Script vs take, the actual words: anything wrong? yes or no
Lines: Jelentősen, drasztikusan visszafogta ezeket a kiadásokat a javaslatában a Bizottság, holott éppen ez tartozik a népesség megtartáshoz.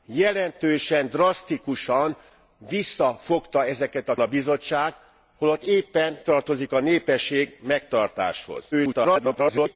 yes